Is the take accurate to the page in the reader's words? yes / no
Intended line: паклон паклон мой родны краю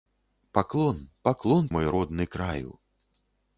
yes